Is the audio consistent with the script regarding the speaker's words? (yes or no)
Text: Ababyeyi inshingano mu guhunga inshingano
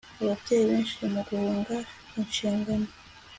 no